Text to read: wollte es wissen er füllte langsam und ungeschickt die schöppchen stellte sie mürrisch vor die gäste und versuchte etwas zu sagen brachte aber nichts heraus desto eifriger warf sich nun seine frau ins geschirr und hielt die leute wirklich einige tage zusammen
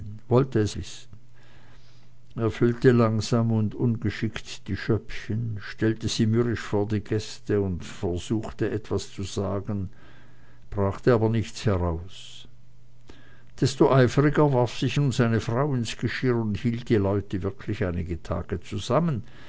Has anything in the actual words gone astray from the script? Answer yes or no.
no